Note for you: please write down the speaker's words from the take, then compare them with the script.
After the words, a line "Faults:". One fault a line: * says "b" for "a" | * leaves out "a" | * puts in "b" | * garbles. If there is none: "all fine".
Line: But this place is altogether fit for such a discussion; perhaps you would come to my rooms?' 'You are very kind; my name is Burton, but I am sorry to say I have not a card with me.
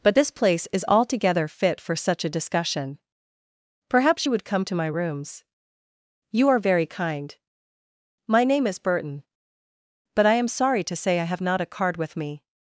But this place is altogether fit for such a discussion; perhaps you would come to my rooms?' 'You are very kind; my name is Burton, but I am sorry to say I have not a card with me.
Faults:
all fine